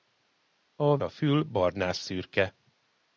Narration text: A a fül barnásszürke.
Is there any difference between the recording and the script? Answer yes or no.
no